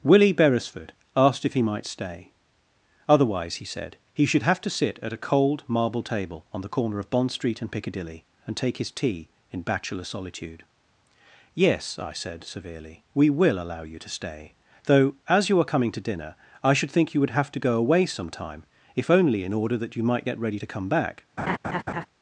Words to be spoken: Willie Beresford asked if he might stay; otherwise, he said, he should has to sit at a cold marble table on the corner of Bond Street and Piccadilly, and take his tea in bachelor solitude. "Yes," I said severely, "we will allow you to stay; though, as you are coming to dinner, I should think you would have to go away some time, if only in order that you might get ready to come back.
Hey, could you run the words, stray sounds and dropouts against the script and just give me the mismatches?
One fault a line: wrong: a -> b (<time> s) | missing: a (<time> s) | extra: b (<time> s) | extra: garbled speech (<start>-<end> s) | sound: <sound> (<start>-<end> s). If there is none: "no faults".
wrong: has -> have (4.4 s)
sound: laugh (21.4-22.1 s)